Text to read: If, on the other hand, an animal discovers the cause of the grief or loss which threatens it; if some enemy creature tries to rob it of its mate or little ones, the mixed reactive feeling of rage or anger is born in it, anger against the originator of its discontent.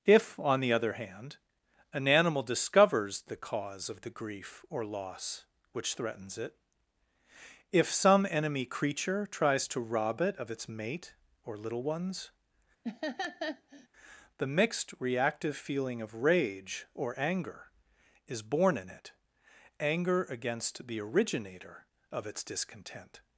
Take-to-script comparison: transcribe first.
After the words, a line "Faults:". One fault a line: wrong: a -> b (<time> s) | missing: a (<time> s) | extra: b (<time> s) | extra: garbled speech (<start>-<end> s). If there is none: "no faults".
If, on the other hand, an animal discovers the cause of the grief or loss which threatens it; if some enemy creature tries to rob it of its mate or little ones, the mixed reactive feeling of rage or anger is born in it, anger against the originator of its discontent.
Faults:
no faults